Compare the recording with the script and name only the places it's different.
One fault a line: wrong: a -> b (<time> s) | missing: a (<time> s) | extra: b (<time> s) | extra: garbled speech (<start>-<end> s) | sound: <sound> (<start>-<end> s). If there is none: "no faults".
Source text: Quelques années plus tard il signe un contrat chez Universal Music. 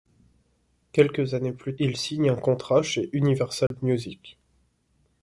missing: tard (1.8 s)
sound: dropout (3.7-3.7 s)